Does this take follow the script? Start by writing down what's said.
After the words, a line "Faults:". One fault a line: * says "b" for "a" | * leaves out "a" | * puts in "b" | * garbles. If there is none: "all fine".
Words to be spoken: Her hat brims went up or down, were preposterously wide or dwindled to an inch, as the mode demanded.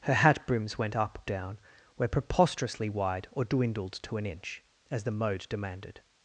Her hat brims went up down, were preposterously wide or dwindled to an inch, as the mode demanded.
Faults:
* leaves out "or"